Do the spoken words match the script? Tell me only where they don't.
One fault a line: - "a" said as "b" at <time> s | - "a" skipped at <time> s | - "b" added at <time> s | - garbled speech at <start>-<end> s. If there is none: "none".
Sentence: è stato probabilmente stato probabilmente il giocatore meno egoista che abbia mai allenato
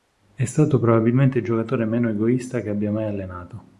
- "stato probabilmente" skipped at 1.4 s